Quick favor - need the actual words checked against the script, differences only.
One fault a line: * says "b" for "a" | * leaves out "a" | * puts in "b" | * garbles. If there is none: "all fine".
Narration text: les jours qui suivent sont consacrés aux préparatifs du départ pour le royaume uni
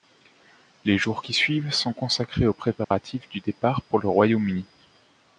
all fine